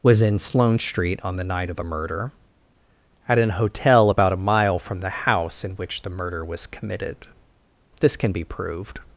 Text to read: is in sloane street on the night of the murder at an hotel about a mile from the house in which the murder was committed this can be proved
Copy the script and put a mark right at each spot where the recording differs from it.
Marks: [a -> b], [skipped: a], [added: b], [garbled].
[is -> was] in sloane street on the night of the murder at an hotel about a mile from the house in which the murder was committed this can be proved